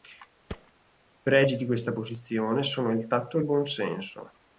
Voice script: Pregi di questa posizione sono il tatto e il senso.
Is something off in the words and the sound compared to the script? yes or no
yes